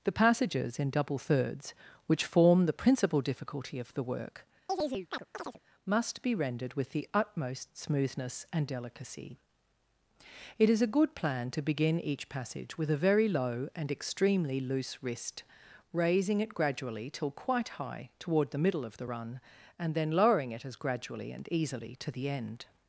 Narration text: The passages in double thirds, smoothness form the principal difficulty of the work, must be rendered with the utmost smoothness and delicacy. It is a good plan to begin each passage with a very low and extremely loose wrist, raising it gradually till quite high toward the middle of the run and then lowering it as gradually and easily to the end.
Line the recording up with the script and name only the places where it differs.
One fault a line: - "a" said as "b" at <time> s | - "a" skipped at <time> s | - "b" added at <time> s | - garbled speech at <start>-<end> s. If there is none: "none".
- "smoothness" said as "which" at 2.1 s